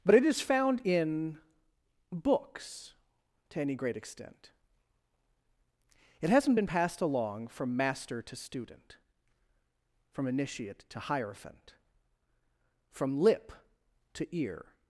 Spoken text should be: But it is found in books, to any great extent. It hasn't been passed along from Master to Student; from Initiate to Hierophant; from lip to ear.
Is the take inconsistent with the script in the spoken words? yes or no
no